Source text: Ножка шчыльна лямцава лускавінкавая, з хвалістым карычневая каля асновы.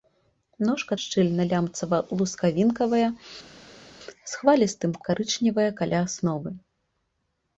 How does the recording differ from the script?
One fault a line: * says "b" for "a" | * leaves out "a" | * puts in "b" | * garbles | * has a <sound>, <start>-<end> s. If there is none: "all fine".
all fine